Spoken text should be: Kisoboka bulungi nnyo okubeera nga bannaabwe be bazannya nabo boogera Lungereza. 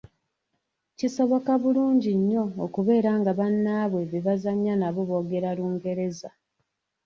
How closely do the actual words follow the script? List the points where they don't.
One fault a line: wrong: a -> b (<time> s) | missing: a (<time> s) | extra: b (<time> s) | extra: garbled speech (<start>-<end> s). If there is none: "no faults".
no faults